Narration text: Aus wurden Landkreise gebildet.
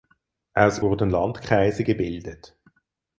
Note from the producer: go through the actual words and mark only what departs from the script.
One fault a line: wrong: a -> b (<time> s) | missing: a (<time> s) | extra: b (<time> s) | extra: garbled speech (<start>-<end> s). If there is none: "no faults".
no faults